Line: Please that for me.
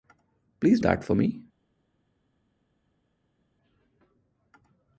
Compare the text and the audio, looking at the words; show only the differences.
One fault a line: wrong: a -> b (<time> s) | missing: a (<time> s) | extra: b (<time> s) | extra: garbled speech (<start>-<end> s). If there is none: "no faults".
no faults